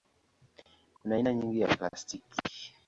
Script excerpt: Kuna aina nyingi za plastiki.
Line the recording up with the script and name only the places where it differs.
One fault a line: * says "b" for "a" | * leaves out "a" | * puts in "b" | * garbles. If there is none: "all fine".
all fine